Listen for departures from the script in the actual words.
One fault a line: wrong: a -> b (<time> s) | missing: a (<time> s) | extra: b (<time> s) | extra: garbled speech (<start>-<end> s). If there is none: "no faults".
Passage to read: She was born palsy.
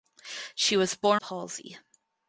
no faults